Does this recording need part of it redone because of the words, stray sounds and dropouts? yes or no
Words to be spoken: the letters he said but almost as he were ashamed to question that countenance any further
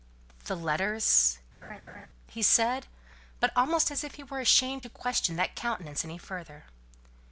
yes